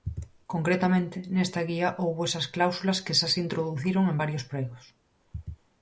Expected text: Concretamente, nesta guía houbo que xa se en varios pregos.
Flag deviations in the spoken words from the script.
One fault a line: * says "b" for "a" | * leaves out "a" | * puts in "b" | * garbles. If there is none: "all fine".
* puts in "esas cláusulas"
* puts in "introduciron"